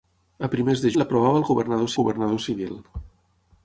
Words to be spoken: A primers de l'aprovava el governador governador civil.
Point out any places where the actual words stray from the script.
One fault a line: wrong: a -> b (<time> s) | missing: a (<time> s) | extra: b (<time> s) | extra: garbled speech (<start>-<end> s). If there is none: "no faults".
no faults